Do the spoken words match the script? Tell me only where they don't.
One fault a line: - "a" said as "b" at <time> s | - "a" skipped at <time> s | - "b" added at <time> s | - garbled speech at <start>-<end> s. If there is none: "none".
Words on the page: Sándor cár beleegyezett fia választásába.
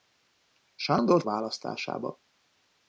- "cár beleegyezett fia" skipped at 1.2 s